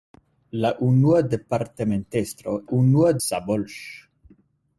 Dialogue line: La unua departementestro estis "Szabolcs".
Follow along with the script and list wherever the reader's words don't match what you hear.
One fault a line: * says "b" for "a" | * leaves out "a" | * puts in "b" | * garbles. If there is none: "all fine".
* says "unua" for "estis"